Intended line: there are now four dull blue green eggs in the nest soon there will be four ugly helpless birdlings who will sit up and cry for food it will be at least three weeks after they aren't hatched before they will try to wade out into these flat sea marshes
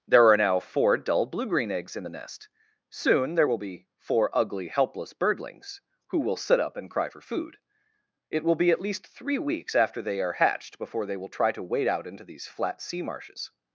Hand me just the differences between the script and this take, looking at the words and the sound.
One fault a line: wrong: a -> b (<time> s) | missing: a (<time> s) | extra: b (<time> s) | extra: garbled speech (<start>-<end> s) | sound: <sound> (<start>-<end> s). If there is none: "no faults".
wrong: aren't -> are (10.2 s)